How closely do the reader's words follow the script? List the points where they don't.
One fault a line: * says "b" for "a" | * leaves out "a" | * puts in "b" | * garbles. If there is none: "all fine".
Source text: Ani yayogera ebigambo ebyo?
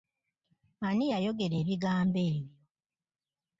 all fine